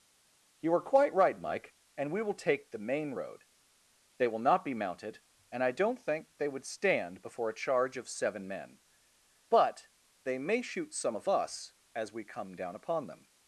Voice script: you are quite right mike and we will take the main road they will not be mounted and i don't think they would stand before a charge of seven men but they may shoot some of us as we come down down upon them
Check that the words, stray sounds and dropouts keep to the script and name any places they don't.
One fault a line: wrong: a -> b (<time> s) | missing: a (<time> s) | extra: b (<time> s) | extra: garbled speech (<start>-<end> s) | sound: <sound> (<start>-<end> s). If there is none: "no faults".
missing: down (12.8 s)